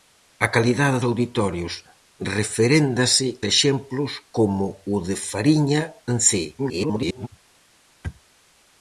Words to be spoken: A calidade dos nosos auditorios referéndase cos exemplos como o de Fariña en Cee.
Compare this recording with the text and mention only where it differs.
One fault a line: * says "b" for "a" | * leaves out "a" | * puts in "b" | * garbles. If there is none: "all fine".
* leaves out "dos nosos"
* leaves out "cos"
* garbles